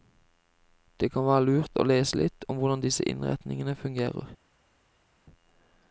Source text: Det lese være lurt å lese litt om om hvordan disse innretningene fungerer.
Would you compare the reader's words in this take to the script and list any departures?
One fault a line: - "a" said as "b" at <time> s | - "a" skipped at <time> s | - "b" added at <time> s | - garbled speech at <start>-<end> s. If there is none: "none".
- "lese" said as "kan" at 1.1 s
- "om" skipped at 2.6 s